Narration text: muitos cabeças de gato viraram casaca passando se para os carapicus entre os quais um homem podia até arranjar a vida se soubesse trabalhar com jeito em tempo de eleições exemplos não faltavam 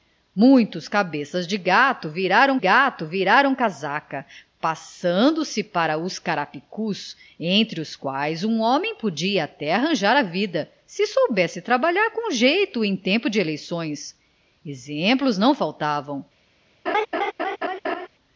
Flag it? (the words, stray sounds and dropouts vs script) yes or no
yes